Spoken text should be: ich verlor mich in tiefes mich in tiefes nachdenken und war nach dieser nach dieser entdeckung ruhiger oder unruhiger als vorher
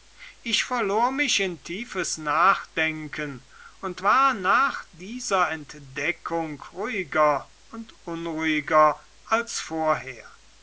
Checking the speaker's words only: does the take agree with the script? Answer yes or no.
no